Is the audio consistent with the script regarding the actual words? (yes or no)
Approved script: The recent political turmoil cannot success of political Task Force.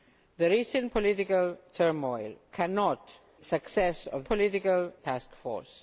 yes